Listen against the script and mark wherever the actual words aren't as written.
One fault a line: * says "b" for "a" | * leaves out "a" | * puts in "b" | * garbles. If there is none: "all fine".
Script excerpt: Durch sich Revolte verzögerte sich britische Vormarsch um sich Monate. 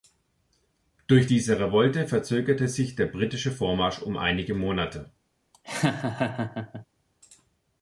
* says "diese" for "sich"
* puts in "der"
* says "einige" for "sich"